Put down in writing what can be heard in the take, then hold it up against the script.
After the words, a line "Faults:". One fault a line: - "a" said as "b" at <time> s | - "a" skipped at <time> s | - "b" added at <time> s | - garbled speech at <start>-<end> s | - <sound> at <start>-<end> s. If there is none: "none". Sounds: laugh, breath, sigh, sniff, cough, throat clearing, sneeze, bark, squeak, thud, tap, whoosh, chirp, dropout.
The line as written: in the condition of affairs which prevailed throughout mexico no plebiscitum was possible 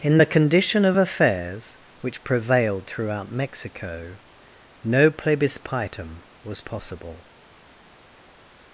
in the condition of affairs which prevailed throughout mexico no plebiscitum was possible
Faults:
none